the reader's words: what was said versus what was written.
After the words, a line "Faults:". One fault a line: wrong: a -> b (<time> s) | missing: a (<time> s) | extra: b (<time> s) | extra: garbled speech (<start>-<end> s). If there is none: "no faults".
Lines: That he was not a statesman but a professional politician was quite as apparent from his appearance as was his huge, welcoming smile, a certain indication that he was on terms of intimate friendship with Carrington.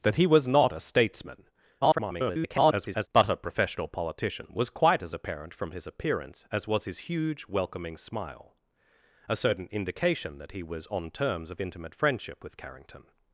That he was not a statesman [garbled] but a professional politician was quite as apparent from his appearance as was his huge, welcoming smile, a certain indication that he was on terms of intimate friendship with Carrington.
Faults:
extra: garbled speech (1.8-3.1 s)